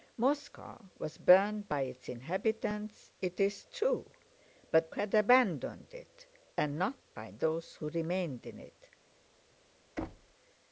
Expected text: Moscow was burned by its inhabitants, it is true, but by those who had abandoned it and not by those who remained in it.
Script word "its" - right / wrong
right